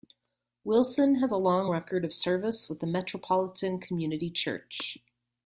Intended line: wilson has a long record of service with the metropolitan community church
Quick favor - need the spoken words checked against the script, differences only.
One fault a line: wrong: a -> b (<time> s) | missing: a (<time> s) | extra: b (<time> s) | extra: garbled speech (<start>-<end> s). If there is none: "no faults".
no faults